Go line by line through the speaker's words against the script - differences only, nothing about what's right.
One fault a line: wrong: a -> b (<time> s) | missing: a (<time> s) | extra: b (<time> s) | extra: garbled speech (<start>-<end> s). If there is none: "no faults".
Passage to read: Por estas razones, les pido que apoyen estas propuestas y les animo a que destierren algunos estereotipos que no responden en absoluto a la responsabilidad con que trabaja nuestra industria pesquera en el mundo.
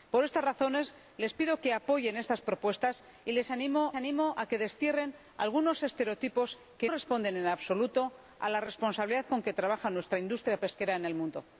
extra: animo (4.0 s)
missing: no (6.9 s)